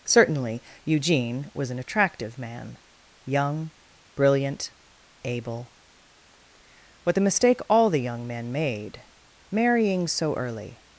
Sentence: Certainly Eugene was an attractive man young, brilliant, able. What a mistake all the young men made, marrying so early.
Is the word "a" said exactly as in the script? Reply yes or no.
no